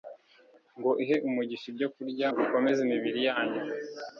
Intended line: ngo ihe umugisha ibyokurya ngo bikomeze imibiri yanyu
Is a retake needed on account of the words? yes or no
yes